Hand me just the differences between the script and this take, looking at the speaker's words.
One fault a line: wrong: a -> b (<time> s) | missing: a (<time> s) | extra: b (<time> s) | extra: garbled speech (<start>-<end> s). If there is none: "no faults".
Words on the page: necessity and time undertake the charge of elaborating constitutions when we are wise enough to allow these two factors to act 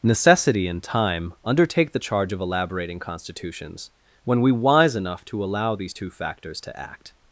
missing: are (4.5 s)